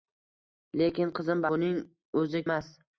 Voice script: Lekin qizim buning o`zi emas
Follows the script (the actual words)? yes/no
yes